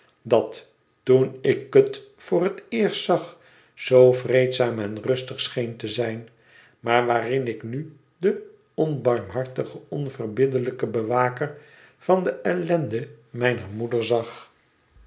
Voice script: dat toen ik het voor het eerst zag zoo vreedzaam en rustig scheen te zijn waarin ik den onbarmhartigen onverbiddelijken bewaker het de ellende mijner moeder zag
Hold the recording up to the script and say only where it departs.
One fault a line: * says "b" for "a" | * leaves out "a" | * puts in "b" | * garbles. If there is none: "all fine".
* puts in "maar"
* puts in "nu"
* says "van" for "het"